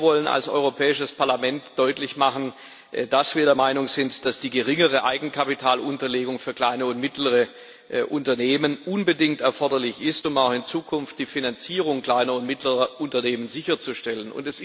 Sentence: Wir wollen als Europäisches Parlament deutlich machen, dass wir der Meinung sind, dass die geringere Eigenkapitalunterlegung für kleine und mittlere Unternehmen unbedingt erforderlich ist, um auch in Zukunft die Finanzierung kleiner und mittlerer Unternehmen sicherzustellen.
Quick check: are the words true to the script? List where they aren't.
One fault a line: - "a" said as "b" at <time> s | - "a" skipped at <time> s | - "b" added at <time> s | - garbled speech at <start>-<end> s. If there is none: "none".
none